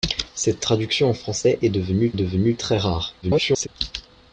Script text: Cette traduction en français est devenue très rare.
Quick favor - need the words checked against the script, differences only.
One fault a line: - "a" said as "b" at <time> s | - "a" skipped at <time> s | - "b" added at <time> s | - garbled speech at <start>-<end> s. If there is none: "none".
- "devenue" added at 2.1 s
- garbled speech at 3.2-3.7 s